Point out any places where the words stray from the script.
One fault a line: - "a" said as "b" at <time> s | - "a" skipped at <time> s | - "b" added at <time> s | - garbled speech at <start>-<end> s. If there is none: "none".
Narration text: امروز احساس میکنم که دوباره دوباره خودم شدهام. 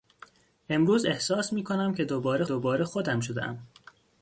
none